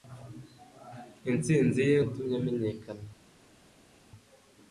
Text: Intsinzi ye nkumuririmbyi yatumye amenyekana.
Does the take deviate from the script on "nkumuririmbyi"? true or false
true